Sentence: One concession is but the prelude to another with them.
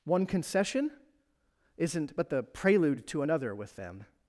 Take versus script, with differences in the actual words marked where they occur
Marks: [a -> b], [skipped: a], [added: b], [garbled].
One concession [is -> isn't] but the prelude to another with them.